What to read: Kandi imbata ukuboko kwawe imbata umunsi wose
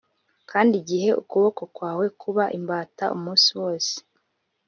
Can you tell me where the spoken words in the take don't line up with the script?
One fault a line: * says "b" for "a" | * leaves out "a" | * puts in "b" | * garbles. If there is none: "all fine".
* says "igihe" for "imbata"
* puts in "kuba"